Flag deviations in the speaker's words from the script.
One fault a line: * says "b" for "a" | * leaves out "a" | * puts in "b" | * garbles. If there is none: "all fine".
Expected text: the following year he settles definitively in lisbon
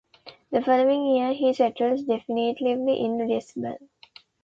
all fine